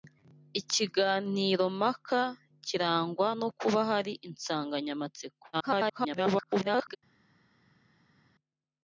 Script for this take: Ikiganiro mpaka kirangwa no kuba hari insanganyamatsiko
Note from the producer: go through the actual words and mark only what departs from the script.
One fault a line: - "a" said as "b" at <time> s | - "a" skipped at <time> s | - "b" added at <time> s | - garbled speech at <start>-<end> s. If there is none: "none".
- garbled speech at 5.5-7.0 s